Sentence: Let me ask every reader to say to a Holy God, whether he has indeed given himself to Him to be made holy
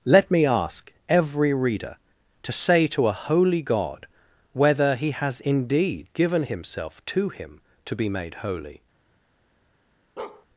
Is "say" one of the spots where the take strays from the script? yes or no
no